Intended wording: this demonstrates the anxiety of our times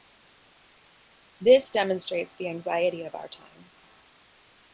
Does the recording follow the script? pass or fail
pass